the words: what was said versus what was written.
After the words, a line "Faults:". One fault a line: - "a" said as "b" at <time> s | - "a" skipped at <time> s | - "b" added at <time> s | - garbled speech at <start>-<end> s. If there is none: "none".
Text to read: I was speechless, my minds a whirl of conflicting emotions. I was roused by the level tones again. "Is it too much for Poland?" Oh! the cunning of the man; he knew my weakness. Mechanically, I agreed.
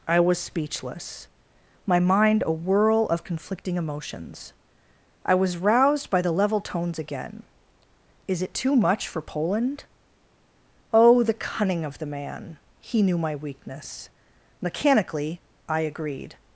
I was speechless, my mind a whirl of conflicting emotions. I was roused by the level tones again. "Is it too much for Poland?" Oh! the cunning of the man; he knew my weakness. Mechanically, I agreed.
Faults:
- "minds" said as "mind" at 2.0 s